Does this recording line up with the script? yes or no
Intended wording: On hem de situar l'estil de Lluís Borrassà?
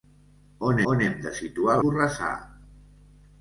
no